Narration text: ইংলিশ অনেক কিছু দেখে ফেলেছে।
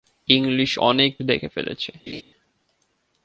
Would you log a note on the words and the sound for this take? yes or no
yes